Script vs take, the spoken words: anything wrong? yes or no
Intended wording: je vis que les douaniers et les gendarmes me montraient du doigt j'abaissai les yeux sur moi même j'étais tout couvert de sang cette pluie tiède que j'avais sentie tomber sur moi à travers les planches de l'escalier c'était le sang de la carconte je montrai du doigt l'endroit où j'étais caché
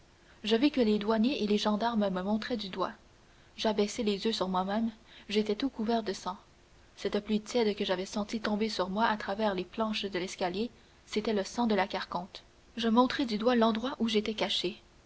no